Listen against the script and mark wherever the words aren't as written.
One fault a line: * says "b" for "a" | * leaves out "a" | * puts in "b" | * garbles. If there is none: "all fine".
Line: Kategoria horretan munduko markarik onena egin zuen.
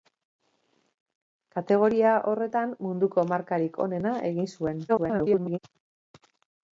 * garbles